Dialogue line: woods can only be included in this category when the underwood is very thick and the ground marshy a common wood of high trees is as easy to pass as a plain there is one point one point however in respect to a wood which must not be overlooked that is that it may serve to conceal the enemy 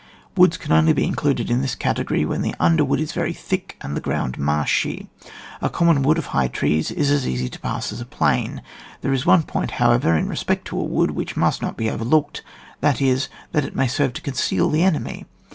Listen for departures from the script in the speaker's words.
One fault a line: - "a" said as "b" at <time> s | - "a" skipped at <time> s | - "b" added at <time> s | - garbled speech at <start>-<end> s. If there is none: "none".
- "one point" skipped at 9.7 s